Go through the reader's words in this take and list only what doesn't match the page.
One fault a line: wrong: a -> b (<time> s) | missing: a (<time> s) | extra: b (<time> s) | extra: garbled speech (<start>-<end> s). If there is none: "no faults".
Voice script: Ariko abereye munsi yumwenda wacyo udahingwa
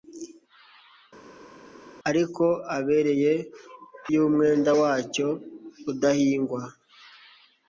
missing: munsi (3.3 s)